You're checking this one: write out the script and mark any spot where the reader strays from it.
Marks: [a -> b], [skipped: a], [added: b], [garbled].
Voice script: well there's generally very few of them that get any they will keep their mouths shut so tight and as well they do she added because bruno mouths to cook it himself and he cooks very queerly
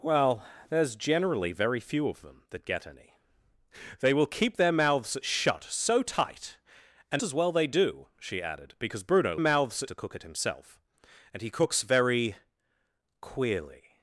well there's generally very few of them that get any they will keep their mouths shut so tight and as well they do she added because bruno mouths to cook it himself and he cooks very queerly